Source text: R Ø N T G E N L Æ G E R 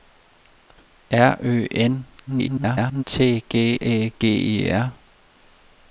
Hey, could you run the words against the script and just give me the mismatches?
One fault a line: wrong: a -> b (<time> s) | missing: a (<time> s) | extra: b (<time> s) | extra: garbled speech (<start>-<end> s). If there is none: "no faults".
extra: garbled speech (2.3-3.0 s)
missing: E N L (3.5 s)